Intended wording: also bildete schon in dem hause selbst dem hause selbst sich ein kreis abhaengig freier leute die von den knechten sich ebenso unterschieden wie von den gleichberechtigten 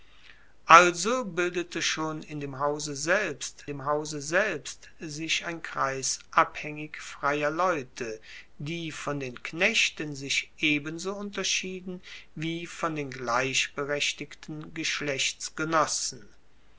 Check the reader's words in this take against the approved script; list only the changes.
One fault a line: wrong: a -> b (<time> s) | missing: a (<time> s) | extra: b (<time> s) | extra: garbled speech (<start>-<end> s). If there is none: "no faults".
no faults